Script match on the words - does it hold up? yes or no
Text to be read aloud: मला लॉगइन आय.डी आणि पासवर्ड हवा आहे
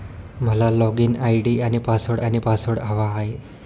no